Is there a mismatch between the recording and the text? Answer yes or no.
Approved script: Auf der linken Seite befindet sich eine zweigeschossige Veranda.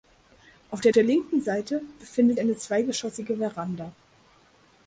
yes